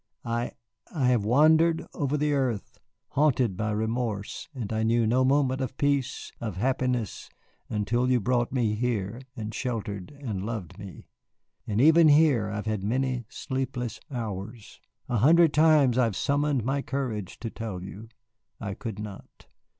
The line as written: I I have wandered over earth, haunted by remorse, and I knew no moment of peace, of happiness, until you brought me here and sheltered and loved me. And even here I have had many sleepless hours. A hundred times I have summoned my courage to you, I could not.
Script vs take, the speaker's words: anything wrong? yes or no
yes